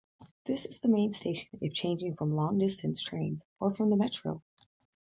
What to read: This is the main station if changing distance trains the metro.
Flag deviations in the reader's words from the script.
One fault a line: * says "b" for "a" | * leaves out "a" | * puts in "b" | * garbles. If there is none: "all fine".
* puts in "from long"
* puts in "or from"